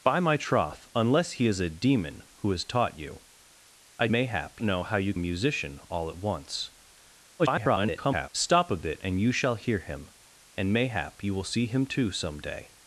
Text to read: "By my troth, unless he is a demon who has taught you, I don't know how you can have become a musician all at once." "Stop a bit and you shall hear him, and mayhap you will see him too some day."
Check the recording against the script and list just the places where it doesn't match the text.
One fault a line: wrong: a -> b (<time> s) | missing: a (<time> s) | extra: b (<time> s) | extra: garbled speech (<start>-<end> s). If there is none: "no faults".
wrong: don't -> mayhap (4.1 s)
missing: can have become (5.1 s)
extra: garbled speech (7.4-8.3 s)